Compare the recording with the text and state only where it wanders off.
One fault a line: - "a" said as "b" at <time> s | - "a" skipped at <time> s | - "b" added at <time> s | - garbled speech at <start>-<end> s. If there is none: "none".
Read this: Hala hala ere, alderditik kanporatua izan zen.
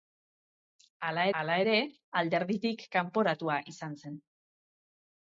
none